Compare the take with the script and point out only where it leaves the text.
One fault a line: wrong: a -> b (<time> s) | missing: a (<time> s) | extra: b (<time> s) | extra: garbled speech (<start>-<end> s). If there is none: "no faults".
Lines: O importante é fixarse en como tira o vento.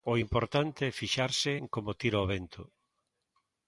no faults